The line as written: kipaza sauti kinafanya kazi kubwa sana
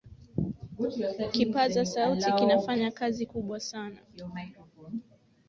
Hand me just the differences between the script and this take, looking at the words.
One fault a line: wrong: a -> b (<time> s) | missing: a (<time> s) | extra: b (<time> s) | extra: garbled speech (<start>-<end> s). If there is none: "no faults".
no faults